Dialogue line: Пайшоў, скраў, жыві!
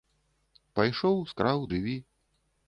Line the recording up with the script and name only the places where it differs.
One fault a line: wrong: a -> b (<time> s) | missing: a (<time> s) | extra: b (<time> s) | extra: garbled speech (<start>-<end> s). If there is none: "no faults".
no faults